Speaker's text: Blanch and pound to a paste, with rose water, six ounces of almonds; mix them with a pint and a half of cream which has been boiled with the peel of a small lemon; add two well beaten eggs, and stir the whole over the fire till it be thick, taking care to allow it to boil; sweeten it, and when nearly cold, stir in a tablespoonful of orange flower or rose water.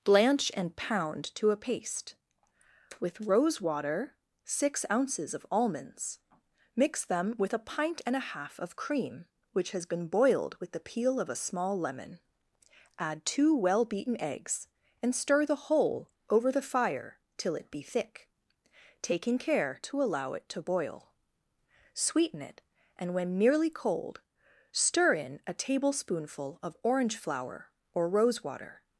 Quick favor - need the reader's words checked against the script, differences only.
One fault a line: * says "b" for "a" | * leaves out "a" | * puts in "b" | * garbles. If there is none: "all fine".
all fine